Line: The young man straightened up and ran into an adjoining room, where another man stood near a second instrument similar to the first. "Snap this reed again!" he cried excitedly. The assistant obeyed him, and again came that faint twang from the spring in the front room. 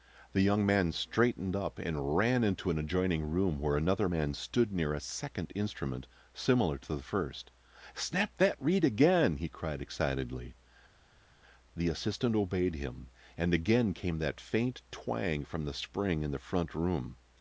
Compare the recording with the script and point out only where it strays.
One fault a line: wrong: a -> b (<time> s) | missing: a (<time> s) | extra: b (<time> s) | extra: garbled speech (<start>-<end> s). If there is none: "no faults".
wrong: this -> that (8.4 s)